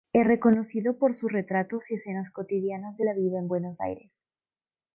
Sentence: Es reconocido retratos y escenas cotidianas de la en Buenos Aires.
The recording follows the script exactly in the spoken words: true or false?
false